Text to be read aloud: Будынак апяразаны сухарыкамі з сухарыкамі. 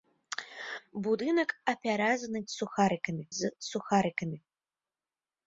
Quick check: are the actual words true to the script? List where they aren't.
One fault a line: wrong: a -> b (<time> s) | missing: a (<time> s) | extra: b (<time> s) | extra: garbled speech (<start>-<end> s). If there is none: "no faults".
no faults